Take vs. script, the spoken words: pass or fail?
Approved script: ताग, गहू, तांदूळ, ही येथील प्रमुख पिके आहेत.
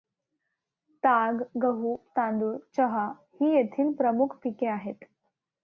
fail